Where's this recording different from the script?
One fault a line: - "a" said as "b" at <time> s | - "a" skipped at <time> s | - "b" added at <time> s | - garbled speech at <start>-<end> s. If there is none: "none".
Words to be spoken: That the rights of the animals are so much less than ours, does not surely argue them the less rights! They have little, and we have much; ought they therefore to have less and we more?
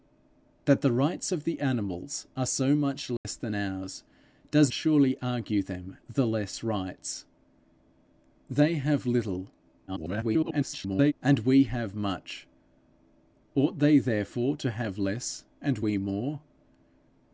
- "not" skipped at 4.7 s
- garbled speech at 9.9-11.1 s